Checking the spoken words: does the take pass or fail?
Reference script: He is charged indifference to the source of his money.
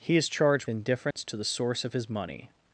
pass